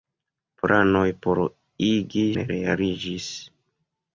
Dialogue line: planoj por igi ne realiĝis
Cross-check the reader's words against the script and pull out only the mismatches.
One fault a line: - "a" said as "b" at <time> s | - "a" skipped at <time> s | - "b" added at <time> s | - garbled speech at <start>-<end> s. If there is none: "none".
none